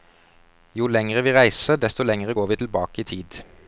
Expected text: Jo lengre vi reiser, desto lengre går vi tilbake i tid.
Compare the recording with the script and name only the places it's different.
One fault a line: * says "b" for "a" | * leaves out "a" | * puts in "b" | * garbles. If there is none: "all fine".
all fine